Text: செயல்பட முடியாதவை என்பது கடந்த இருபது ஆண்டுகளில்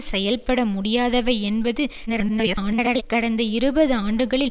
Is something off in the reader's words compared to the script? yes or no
yes